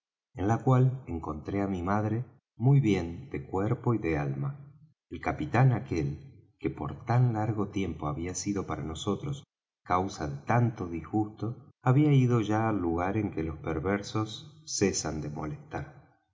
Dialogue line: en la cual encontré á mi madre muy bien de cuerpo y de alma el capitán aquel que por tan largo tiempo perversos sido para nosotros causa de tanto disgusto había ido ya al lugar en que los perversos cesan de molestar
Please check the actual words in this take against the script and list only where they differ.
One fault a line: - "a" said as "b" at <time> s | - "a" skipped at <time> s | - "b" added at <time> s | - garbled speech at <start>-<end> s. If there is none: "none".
- "perversos" said as "había" at 8.1 s